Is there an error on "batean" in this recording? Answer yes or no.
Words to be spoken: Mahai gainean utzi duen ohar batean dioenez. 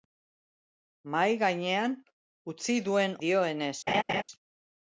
yes